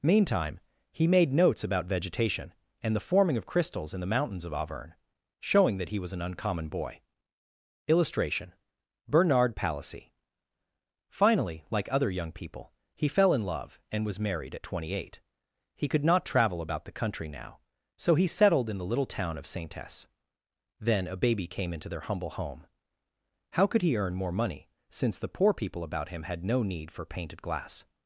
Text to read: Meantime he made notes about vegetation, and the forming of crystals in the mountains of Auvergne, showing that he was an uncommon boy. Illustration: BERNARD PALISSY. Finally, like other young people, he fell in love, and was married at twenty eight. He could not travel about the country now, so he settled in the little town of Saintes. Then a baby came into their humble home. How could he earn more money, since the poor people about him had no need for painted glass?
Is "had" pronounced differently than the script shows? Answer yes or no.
no